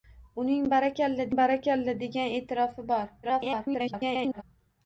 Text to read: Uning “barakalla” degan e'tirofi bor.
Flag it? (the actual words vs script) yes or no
yes